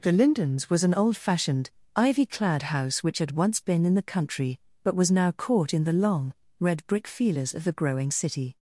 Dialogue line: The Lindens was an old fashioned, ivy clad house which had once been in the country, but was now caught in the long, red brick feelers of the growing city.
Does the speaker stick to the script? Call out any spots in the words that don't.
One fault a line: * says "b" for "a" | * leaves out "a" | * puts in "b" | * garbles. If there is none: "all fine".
all fine